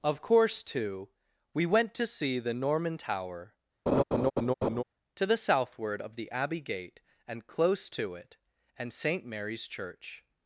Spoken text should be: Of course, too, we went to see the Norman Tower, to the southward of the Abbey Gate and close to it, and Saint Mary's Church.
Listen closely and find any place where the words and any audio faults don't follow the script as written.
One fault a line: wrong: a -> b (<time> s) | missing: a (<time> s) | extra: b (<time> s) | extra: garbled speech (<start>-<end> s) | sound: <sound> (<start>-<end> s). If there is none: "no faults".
sound: laugh (3.9-4.8 s)